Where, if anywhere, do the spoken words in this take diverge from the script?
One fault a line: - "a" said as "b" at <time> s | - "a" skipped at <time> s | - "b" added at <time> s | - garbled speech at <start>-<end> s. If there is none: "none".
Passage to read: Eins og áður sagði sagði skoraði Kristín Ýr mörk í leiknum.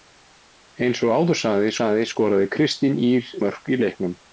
none